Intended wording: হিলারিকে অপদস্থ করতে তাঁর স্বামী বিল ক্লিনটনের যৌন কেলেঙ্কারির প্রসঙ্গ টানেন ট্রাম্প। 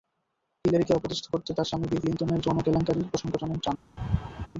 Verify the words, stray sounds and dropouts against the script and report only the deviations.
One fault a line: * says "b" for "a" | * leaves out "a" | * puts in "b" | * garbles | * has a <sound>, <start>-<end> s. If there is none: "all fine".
* has a laugh, 4.0-4.5 s